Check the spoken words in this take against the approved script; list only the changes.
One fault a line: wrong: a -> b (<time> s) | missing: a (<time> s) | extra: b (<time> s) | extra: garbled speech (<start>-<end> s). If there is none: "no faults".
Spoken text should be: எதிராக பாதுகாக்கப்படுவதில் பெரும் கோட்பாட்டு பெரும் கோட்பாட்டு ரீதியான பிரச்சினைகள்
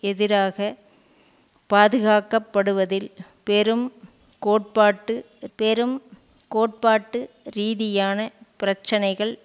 no faults